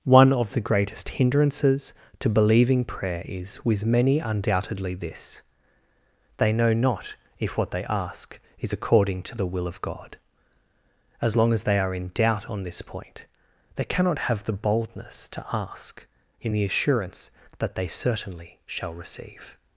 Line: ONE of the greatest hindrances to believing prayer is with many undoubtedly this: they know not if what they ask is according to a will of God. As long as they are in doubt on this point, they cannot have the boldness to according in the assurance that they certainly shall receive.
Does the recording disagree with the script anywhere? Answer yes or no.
yes